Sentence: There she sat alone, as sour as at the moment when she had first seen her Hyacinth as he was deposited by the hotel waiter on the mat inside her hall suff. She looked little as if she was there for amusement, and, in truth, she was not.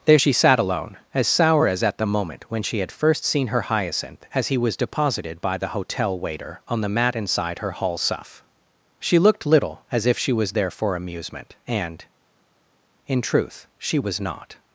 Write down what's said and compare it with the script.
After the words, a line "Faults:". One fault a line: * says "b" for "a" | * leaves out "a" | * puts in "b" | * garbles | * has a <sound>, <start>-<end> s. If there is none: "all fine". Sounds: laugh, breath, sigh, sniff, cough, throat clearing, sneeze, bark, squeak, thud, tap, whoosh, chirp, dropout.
There she sat alone, as sour as at the moment when she had first seen her Hyacinth as he was deposited by the hotel waiter on the mat inside her hall suff. She looked little as if she was there for amusement, and, in truth, she was not.
Faults:
all fine